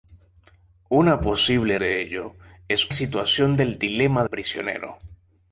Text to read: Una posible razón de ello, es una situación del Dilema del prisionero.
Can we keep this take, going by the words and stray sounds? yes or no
no